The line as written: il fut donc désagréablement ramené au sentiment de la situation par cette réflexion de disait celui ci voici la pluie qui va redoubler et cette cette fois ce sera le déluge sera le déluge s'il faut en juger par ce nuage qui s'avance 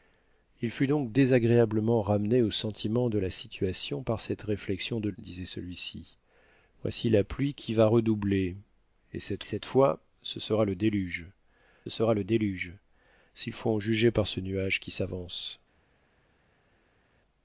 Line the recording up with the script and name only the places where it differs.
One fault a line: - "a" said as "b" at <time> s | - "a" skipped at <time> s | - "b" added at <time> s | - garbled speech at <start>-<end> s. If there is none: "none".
none